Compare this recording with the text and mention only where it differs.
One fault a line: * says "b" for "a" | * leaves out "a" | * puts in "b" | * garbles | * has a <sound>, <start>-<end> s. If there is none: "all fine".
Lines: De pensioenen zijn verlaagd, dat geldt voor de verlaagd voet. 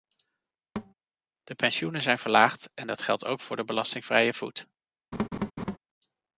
* has a thud, 0.8-0.9 s
* puts in "en"
* puts in "ook"
* says "belastingvrije" for "verlaagd"
* has a laugh, 5.1-5.8 s